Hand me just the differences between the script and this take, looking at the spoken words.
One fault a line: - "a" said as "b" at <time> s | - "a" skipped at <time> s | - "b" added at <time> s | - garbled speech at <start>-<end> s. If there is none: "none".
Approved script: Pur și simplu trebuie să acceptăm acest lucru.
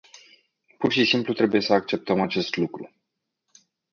none